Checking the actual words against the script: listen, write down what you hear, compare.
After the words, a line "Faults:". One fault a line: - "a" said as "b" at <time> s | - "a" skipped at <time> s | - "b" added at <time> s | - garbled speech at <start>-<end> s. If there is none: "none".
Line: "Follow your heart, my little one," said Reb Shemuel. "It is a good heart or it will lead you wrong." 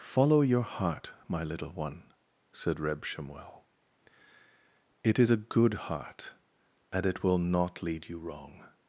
"Follow your heart, my little one," said Reb Shemuel. "It is a good heart and it will not lead you wrong."
Faults:
- "or" said as "and" at 6.9 s
- "not" added at 7.4 s